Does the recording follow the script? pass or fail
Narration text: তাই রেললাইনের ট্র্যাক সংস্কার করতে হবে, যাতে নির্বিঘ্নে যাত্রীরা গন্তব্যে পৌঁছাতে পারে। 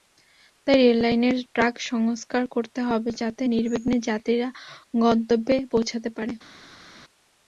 pass